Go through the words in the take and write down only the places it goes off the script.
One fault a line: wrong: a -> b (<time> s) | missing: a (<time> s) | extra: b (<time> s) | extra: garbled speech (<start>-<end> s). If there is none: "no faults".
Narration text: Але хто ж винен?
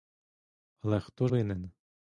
missing: ж (1.3 s)